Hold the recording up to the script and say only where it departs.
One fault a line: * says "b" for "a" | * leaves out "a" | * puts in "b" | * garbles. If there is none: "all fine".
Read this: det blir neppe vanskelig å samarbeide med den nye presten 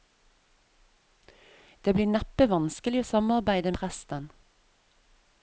* leaves out "med den nye"